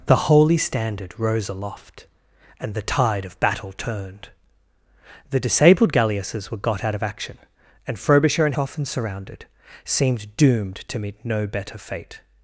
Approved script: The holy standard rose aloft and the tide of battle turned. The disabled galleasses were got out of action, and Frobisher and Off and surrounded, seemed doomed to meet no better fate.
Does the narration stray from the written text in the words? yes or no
no